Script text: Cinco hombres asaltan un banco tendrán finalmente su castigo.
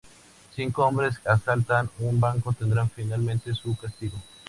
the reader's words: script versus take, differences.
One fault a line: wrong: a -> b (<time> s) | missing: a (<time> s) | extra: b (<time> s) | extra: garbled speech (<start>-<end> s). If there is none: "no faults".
no faults